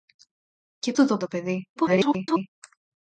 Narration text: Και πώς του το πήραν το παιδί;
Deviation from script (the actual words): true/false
true